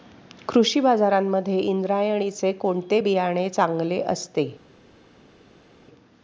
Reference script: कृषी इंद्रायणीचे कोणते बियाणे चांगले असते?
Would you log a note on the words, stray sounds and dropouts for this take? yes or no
yes